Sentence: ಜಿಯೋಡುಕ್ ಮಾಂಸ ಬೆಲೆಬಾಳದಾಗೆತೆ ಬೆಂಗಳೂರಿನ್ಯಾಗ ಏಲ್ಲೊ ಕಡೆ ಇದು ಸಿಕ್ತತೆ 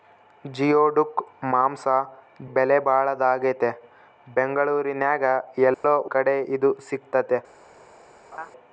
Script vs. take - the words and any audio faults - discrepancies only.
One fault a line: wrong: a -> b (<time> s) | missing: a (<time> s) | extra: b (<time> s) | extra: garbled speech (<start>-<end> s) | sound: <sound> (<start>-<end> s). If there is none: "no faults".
sound: dropout (5.7-5.8 s)
sound: laugh (8.3-8.5 s)